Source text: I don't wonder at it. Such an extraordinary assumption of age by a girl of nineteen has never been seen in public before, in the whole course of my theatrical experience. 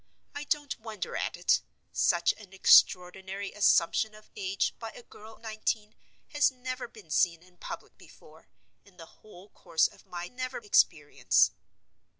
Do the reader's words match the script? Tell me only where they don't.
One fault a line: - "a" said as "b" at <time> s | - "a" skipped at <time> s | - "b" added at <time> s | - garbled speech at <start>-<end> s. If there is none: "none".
- "of" skipped at 5.4 s
- "theatrical" said as "never" at 10.2 s